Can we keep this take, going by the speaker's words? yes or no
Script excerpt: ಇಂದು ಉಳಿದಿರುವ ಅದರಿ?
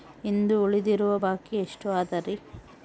no